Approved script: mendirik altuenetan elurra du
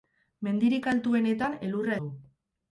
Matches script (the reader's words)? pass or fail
pass